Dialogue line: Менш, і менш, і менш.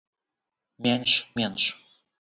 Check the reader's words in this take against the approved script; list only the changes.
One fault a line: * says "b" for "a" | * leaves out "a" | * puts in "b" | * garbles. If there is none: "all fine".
* leaves out "і менш і"